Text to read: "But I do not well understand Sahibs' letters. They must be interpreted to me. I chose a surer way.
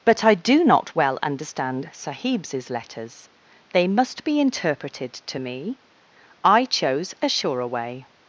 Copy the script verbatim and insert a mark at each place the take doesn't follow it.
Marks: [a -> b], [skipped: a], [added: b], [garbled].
"But I do not well understand Sahibs' letters. They must be interpreted to me. I chose a surer way.